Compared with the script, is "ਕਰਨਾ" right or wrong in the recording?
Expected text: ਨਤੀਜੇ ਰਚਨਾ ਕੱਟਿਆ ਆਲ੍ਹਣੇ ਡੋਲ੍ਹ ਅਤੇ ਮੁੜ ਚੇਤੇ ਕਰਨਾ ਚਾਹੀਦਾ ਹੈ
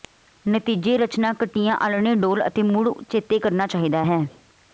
right